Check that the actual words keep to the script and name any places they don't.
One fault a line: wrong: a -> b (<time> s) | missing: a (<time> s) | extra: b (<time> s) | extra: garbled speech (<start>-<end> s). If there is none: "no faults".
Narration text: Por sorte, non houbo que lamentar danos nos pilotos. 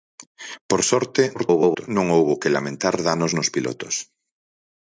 extra: garbled speech (1.3-1.9 s)